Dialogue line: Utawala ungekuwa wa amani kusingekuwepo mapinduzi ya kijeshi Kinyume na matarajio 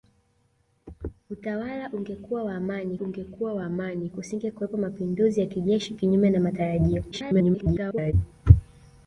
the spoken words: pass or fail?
fail